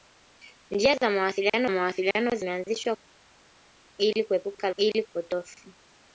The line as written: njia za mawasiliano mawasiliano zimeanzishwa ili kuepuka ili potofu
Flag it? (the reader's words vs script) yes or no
no